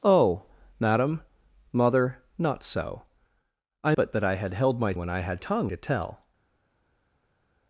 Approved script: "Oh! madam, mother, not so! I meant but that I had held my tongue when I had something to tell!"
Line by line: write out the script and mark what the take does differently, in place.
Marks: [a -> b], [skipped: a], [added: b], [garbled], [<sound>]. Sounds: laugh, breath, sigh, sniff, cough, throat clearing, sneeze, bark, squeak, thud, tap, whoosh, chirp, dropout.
"Oh! madam, mother, not so! I [skipped: meant] but that I had held my [skipped: tongue] when I had [something -> tongue] to tell!"